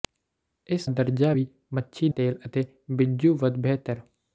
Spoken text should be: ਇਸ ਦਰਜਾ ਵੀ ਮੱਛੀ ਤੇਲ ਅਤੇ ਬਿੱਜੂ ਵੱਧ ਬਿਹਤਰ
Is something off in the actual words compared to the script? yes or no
no